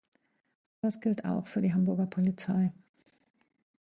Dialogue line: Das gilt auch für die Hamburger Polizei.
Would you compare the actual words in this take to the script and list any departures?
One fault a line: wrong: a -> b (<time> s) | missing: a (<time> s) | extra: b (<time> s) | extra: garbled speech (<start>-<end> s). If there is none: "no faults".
no faults